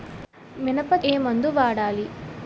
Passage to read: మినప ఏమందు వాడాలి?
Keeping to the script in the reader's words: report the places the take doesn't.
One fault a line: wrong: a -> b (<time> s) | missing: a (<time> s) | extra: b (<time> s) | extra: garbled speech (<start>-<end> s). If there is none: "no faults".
no faults